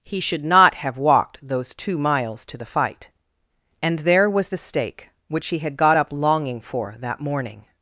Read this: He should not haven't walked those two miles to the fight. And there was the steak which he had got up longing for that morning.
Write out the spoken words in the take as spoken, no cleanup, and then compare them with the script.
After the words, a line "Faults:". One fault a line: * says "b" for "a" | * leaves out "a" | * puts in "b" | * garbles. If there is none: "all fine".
He should not have walked those two miles to the fight. And there was the steak which he had got up longing for that morning.
Faults:
* says "have" for "haven't"